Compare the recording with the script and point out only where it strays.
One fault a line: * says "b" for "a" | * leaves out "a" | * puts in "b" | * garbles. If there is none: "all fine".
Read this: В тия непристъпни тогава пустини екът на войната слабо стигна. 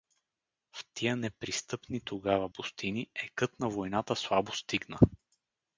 all fine